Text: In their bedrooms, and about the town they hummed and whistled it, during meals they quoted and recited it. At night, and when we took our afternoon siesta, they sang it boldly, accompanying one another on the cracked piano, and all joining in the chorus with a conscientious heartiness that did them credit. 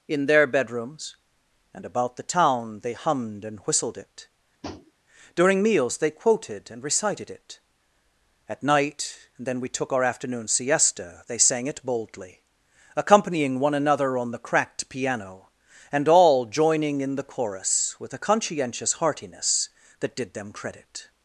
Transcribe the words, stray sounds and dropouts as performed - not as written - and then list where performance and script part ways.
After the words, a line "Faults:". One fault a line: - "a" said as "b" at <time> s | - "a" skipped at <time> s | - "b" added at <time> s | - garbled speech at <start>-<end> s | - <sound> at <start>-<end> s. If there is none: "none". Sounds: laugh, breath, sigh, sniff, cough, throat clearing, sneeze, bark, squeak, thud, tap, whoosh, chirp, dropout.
In their bedrooms, and about the town they hummed and whistled it, during meals they quoted and recited it. At night, and then we took our afternoon siesta, they sang it boldly, accompanying one another on the cracked piano, and all joining in the chorus with a conscientious heartiness that did them credit.
Faults:
- tap at 4.6-4.9 s
- "when" said as "then" at 9.5 s